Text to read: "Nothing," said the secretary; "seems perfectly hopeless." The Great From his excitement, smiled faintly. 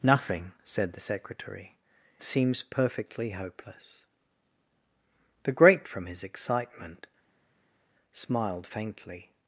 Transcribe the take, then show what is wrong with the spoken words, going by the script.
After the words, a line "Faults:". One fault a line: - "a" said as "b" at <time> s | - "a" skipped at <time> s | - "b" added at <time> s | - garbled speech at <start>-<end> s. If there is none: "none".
"Nothing," said the secretary; "seems perfectly hopeless." The Great From his excitement, smiled faintly.
Faults:
none